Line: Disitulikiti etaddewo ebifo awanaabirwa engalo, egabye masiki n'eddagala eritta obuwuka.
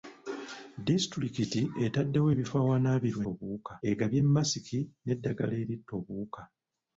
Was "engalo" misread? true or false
true